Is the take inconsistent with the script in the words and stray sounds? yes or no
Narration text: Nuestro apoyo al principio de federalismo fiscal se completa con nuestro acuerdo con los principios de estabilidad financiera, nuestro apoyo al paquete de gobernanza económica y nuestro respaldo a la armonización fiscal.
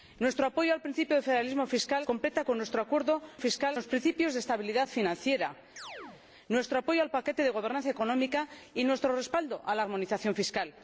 yes